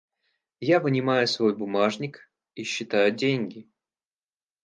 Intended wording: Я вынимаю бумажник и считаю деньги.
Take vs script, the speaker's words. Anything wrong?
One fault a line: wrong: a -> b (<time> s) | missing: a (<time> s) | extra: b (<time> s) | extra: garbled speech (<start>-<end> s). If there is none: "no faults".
extra: свой (1.3 s)